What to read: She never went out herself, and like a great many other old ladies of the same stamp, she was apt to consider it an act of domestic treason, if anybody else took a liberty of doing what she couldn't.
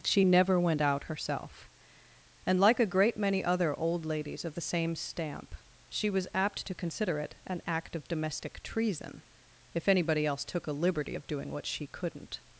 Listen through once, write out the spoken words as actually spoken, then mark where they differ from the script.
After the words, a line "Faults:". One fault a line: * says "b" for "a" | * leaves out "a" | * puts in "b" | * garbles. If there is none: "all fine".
She never went out herself, and like a great many other old ladies of the same stamp, she was apt to consider it an act of domestic treason, if anybody else took a liberty of doing what she couldn't.
Faults:
all fine